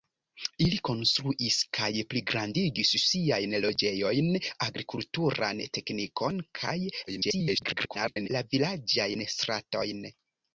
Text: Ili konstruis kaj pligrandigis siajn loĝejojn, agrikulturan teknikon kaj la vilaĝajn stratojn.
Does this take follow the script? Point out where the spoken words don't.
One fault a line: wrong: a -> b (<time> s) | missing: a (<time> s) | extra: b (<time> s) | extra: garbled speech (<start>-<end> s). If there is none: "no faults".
extra: garbled speech (7.1-8.3 s)